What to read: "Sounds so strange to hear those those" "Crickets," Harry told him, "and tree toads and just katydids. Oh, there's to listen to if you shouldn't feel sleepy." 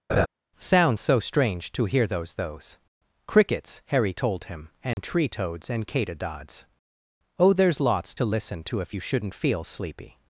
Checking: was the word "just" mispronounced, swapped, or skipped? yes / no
yes